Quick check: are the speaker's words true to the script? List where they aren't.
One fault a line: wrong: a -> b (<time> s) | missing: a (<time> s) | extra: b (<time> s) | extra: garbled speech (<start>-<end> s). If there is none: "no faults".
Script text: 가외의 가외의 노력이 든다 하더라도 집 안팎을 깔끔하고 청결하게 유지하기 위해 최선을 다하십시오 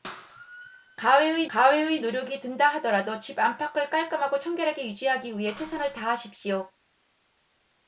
no faults